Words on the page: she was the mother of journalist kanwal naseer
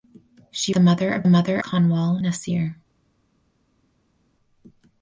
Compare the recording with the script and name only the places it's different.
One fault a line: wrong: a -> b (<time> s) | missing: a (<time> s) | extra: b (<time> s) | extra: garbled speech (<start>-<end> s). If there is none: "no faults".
missing: was (0.7 s)
wrong: journalist -> mother (1.3 s)